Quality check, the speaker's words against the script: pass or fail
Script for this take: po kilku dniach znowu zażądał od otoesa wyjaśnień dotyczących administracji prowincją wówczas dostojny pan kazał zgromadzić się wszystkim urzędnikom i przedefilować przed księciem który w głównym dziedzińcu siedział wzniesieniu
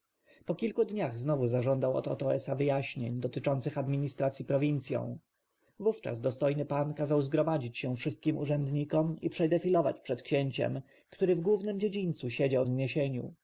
pass